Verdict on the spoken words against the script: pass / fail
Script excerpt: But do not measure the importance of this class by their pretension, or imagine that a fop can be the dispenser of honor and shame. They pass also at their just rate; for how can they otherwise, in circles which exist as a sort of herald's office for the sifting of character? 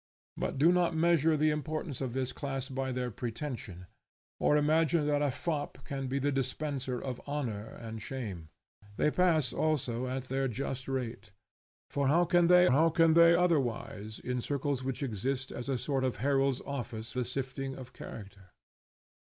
fail